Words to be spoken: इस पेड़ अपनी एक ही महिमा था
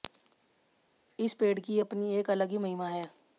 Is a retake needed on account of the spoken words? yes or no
yes